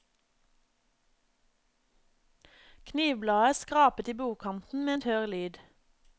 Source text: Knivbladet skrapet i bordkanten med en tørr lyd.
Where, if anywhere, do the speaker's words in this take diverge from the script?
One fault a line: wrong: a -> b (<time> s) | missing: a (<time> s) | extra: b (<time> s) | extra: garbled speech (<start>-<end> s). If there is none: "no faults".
no faults